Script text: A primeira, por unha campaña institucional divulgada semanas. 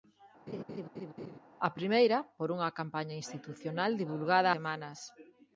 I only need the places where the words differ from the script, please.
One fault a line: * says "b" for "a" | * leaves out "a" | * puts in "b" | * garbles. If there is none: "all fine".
all fine